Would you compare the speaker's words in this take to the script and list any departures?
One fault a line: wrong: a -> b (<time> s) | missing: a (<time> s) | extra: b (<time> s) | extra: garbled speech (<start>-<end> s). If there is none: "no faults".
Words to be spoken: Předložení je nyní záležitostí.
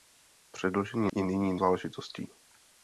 no faults